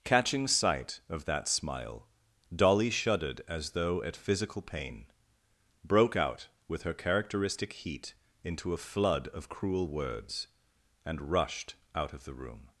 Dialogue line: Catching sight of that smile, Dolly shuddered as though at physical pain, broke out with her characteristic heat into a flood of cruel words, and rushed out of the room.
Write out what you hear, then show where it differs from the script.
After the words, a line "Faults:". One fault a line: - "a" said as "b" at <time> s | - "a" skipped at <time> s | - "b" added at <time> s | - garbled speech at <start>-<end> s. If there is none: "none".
Catching sight of that smile, Dolly shuddered as though at physical pain, broke out with her characteristic heat into a flood of cruel words, and rushed out of the room.
Faults:
none